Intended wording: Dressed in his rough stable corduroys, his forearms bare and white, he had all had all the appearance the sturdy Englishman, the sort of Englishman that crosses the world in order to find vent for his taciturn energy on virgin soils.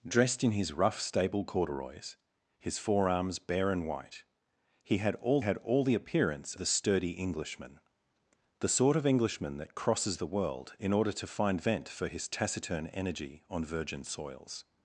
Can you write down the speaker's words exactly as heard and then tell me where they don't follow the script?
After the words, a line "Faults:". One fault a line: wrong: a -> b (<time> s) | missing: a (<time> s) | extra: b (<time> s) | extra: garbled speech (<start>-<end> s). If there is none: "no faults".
Dressed in his rough stable corduroys, his forearms bare and white, he had all had all the appearance the sturdy Englishman, the sort of Englishman that crosses the world in order to find vent for his taciturn energy on virgin soils.
Faults:
no faults